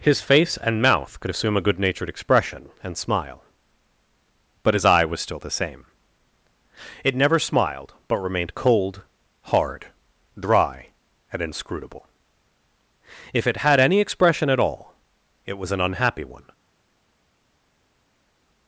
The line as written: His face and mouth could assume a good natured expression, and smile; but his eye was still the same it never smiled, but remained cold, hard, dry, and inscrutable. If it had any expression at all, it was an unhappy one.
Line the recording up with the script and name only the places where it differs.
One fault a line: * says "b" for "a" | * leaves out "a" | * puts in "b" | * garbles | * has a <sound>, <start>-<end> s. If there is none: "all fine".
all fine